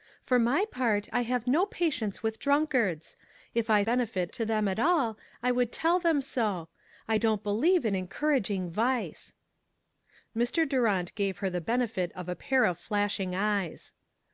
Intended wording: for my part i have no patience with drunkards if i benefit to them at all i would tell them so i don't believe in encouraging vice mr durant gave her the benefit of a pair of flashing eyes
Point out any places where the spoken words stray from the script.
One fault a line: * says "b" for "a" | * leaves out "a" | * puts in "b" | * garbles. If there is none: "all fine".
all fine